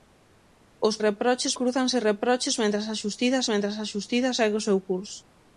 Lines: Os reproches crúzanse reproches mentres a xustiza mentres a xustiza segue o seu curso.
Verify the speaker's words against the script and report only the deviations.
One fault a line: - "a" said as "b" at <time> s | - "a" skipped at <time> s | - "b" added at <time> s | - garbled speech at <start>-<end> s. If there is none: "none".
none